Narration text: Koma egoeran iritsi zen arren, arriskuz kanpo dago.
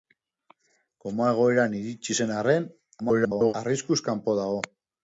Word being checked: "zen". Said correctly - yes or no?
yes